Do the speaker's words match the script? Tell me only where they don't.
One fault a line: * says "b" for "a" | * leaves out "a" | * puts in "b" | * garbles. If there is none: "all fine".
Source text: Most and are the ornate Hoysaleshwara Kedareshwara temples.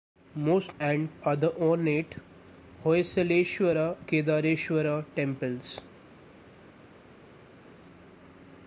all fine